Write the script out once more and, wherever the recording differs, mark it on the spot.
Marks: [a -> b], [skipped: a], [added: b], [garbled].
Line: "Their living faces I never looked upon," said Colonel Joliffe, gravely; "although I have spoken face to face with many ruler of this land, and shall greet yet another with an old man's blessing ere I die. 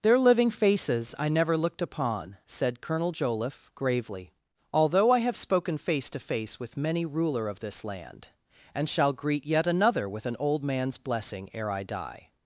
"Their living faces I never looked upon," said Colonel Joliffe, gravely; "although I have spoken face to face with many ruler of this land, and shall greet yet another with an old man's blessing ere I die.